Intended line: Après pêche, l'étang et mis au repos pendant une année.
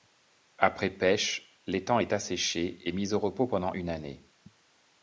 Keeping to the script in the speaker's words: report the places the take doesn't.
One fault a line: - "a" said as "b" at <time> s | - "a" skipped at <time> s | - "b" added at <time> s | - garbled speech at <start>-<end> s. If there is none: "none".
- "est asséché" added at 2.0 s